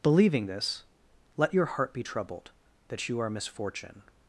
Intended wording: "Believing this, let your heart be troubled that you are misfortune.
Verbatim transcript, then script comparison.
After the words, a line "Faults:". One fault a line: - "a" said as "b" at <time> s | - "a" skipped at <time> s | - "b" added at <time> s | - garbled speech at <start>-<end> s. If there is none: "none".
"Believing this, let your heart be troubled that you are misfortune.
Faults:
none